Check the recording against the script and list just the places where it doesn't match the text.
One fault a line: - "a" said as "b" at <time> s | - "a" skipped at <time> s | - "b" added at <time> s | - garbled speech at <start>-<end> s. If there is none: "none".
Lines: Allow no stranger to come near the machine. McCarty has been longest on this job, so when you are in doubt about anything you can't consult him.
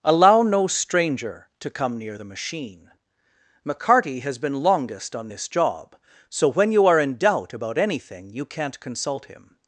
none